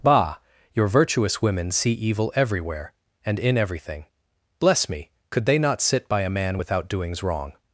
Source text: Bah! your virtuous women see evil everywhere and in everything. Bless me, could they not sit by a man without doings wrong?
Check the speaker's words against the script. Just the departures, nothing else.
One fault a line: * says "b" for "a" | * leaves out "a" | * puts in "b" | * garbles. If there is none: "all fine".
all fine